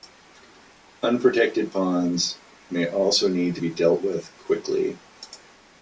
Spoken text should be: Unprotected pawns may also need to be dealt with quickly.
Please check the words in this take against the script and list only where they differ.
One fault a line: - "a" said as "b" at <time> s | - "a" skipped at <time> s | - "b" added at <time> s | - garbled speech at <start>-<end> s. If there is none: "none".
none